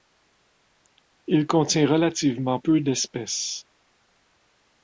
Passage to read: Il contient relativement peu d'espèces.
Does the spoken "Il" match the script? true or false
true